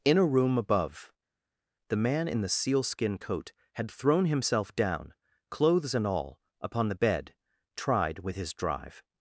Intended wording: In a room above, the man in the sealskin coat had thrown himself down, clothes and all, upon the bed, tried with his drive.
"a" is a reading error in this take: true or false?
false